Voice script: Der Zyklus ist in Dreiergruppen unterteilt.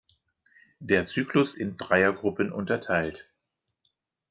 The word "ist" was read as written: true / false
false